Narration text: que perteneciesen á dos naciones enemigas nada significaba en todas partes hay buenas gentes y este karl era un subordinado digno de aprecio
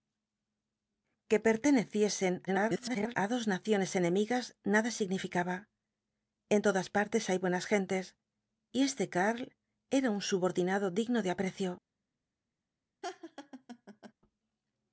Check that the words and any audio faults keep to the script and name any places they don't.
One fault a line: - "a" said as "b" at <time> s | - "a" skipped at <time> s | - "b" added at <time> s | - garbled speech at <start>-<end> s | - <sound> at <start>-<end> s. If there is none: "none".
- garbled speech at 2.5-3.1 s
- laugh at 13.0-14.1 s